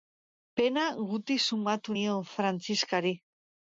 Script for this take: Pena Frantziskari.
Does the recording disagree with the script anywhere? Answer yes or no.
yes